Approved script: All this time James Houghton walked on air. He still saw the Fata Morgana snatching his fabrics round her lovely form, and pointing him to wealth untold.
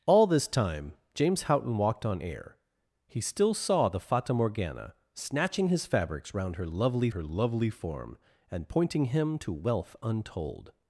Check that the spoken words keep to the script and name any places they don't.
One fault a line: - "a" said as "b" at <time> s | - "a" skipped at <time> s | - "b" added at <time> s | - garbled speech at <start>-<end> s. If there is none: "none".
- "her lovely" added at 7.1 s